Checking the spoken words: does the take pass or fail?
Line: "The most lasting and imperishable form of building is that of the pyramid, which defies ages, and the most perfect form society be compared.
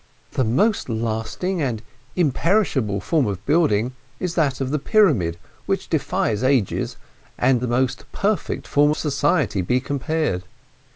pass